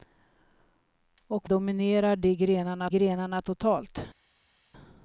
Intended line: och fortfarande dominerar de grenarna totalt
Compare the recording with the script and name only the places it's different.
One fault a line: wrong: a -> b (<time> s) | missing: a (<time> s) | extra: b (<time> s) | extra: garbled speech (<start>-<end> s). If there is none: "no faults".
missing: fortfarande (1.5 s)
extra: grenarna (2.9 s)